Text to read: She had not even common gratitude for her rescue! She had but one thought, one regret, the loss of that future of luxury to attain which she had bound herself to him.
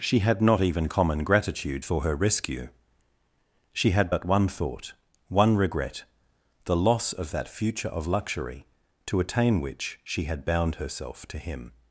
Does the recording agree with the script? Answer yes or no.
yes